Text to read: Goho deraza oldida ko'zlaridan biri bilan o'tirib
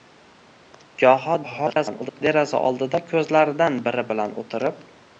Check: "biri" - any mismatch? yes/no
no